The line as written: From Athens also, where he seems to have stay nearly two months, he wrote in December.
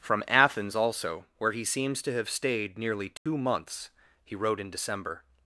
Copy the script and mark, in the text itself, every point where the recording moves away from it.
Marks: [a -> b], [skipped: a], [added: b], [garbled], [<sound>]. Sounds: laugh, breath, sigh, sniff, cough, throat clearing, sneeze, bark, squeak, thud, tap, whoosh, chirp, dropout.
From Athens also, where he seems to have [stay -> stayed] nearly two [dropout] months, he wrote in December.